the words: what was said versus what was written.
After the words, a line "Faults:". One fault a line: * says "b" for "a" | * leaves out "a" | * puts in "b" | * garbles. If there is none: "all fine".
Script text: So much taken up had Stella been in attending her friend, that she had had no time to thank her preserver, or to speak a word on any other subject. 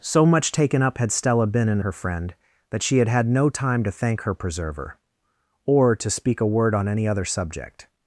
So much taken up had Stella been in her friend, that she had had no time to thank her preserver, or to speak a word on any other subject.
Faults:
* leaves out "attending"